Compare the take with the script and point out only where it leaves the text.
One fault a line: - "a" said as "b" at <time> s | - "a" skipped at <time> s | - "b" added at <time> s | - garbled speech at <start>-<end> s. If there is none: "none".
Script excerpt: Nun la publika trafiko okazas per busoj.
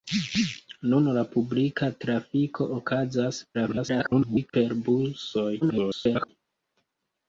- garbled speech at 3.5-4.5 s
- garbled speech at 5.6-6.3 s